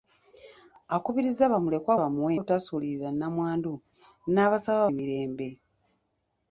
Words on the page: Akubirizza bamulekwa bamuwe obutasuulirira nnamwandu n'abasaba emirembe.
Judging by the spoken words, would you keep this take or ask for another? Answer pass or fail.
pass